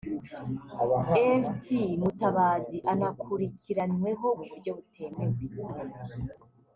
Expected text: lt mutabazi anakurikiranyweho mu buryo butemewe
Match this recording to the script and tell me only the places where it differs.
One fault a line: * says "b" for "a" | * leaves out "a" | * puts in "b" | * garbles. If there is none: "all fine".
all fine